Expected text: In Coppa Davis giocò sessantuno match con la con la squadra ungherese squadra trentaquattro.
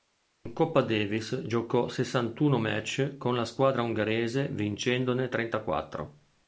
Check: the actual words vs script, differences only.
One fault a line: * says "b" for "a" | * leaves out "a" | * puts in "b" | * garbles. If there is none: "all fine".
* leaves out "con la"
* says "vincendone" for "squadra"